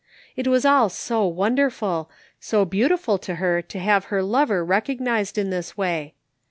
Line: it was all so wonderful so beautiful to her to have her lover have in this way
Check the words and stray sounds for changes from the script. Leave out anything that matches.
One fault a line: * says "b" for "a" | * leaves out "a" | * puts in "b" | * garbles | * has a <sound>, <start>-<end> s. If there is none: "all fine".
* says "recognized" for "have"